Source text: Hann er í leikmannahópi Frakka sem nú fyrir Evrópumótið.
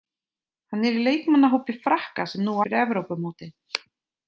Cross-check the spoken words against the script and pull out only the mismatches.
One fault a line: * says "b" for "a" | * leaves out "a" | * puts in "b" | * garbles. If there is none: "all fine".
all fine